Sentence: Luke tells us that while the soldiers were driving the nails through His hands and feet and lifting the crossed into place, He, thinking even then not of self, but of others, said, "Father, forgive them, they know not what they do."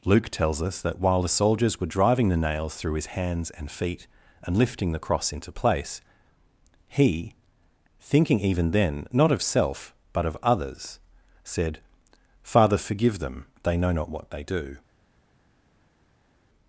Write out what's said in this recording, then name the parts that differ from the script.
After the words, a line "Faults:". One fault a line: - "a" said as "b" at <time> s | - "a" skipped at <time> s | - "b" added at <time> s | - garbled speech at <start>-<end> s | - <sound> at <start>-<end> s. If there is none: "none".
Luke tells us that while the soldiers were driving the nails through His hands and feet and lifting the cross into place, He, thinking even then not of self, but of others, said, "Father, forgive them, they know not what they do."
Faults:
- "crossed" said as "cross" at 5.0 s